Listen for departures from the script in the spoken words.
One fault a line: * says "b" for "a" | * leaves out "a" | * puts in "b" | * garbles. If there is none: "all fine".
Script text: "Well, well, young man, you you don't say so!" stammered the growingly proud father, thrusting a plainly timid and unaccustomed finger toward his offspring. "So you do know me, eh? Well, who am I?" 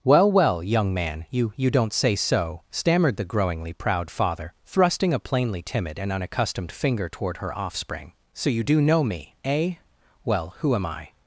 * says "her" for "his"